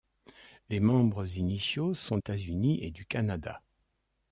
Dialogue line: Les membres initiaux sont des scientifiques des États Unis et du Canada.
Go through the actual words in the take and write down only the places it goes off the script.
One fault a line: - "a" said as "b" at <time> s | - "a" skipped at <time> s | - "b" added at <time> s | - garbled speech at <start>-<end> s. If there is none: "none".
- "des scientifiques des" skipped at 2.2 s